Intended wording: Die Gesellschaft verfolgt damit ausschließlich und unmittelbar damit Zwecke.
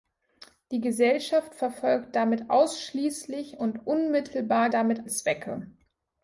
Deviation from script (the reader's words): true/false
false